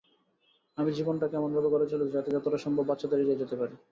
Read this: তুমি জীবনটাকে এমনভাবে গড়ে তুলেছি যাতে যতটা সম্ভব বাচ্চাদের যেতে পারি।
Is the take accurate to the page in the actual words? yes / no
no